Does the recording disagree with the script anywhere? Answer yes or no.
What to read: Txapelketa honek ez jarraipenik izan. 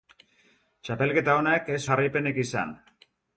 no